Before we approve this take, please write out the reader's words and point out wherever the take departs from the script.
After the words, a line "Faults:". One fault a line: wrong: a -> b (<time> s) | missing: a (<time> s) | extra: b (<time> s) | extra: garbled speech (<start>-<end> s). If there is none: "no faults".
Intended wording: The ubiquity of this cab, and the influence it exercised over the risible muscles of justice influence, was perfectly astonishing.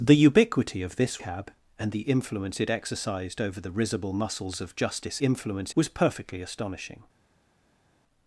The ubiquity of this cab, and the influence it exercised over the risible muscles of justice influence, was perfectly astonishing.
Faults:
no faults